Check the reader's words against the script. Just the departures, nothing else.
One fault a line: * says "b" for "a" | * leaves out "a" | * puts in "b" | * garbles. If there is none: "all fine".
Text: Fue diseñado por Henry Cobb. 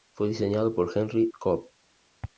all fine